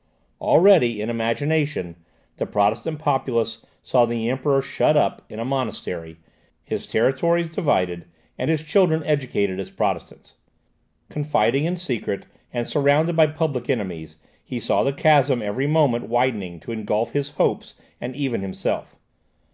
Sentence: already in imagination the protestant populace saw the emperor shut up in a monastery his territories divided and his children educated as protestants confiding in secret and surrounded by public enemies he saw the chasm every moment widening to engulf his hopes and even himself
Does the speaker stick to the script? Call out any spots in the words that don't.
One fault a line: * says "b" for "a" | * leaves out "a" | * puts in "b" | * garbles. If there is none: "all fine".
all fine